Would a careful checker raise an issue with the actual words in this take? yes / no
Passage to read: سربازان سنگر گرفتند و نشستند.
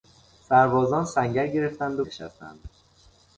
no